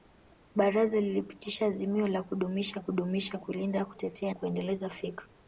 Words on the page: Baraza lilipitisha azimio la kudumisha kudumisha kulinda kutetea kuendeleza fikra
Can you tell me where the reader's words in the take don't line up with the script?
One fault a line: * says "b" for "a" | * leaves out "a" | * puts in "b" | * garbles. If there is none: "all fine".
all fine